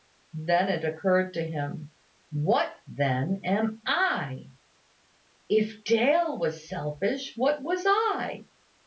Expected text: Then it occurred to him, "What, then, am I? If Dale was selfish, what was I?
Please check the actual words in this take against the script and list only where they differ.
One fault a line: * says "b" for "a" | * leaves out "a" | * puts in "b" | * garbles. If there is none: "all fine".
all fine